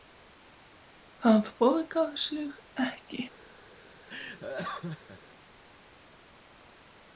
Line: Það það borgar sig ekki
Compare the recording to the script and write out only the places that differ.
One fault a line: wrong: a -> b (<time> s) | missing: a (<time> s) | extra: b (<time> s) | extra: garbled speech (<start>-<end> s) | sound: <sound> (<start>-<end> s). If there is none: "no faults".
missing: það (1.5 s)
sound: laugh (4.1-5.2 s)